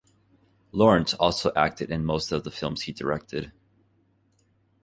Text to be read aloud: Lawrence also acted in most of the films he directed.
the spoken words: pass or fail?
pass